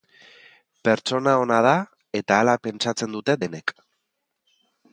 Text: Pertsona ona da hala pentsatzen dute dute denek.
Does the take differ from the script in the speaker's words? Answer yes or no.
yes